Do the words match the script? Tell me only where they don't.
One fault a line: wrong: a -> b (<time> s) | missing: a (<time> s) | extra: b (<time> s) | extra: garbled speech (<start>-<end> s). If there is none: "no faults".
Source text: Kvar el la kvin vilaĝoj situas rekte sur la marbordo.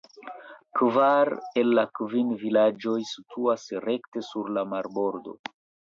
no faults